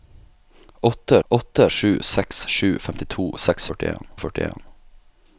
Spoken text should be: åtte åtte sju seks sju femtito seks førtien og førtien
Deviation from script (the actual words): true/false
false